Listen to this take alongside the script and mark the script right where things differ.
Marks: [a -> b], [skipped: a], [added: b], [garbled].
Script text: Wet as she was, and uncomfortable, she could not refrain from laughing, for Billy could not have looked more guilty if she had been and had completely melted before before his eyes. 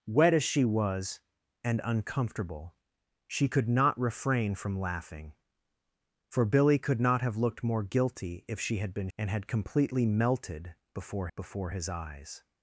Wet as she was, and uncomfortable, she could not refrain from laughing, for Billy could not have looked more guilty if she had been and had completely melted before before his eyes.